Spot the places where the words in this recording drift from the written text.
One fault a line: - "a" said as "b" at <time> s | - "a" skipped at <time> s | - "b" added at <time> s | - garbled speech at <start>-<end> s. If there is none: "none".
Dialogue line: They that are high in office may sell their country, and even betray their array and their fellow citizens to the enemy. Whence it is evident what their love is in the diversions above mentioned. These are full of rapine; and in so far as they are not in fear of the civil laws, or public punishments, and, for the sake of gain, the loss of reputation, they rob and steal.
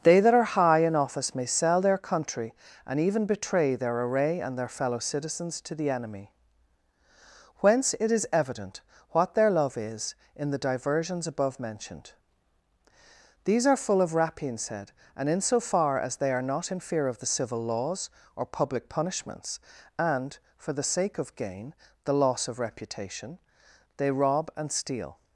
- "said" added at 14.6 s